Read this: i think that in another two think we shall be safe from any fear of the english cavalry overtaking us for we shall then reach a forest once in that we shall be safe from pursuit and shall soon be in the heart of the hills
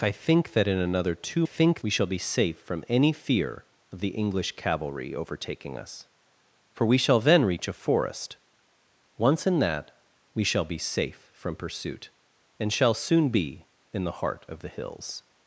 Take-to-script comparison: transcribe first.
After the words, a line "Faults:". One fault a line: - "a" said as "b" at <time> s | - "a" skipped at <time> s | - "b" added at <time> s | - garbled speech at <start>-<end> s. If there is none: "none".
i think that in another two think we shall be safe from any fear of the english cavalry overtaking us for we shall then reach a forest once in that we shall be safe from pursuit and shall soon be in the heart of the hills
Faults:
none